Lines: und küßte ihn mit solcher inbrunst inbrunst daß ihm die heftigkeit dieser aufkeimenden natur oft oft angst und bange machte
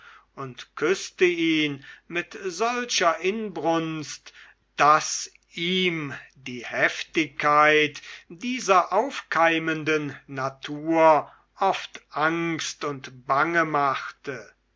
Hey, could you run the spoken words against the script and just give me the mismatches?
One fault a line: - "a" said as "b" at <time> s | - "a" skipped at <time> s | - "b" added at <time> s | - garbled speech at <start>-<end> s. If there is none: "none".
- "inbrunst" skipped at 4.3 s
- "oft" skipped at 12.0 s